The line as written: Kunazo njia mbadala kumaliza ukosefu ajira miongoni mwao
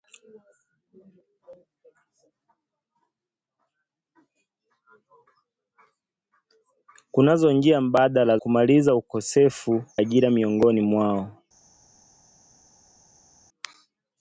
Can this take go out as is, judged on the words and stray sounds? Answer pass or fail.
pass